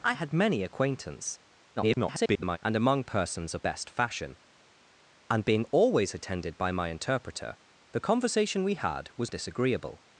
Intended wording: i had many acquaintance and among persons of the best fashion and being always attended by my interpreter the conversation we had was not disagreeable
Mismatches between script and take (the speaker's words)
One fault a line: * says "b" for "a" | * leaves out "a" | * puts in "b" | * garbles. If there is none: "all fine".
* garbles
* leaves out "the"
* leaves out "not"